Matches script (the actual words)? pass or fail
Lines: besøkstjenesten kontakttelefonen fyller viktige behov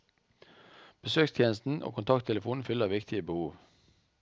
fail